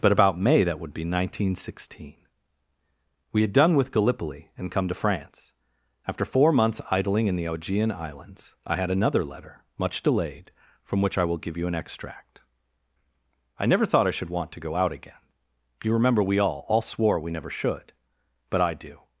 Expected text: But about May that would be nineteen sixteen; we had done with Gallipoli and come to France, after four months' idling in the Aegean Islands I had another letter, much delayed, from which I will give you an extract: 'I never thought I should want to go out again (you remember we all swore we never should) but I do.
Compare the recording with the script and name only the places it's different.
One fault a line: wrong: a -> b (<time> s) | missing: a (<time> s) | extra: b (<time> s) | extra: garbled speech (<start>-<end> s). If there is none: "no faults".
extra: all (16.7 s)